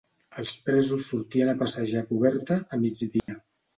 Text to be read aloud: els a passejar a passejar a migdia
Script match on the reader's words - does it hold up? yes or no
no